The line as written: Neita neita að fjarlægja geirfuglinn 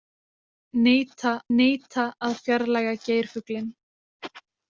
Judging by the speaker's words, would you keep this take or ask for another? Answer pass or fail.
pass